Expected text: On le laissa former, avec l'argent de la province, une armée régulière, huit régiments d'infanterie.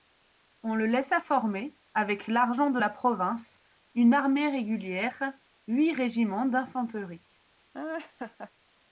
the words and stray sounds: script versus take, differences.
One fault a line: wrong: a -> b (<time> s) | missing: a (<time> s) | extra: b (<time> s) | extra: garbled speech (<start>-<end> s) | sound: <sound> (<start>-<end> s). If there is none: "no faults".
sound: laugh (7.7-8.5 s)